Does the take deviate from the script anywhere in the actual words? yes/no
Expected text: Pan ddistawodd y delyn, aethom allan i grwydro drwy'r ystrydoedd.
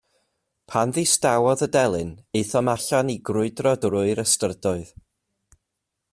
no